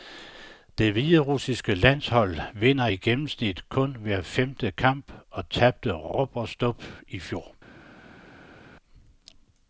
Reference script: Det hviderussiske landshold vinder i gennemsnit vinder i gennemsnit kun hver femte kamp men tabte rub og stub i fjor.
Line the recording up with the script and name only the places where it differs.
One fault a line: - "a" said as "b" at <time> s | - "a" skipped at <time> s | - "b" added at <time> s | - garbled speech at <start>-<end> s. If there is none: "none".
- "vinder i gennemsnit" skipped at 3.7 s
- "men" said as "og" at 5.3 s